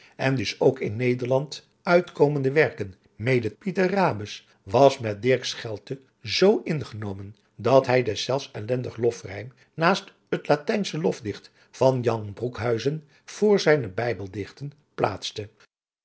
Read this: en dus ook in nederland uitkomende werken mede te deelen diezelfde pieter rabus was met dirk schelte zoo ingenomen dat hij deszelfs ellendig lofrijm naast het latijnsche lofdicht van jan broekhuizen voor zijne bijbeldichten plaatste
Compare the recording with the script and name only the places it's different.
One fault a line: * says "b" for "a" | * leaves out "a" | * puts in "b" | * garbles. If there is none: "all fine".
* leaves out "te deelen diezelfde"